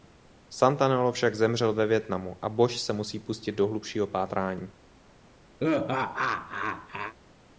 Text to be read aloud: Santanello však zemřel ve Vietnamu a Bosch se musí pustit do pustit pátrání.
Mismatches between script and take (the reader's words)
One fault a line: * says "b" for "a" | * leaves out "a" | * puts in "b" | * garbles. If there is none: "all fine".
* says "hlubšího" for "pustit"